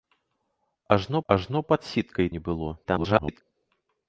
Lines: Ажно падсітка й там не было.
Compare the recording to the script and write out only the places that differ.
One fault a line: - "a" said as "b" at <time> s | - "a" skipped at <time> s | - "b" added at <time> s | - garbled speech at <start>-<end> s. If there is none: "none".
- "ажно" added at 1.3 s
- "там" skipped at 2.3 s
- garbled speech at 2.8-3.4 s